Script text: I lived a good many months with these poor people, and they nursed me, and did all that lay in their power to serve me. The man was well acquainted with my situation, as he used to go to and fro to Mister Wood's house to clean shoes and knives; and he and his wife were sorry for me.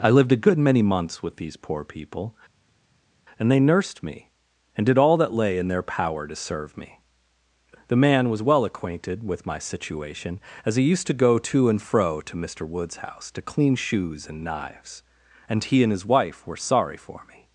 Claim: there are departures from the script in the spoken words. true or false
false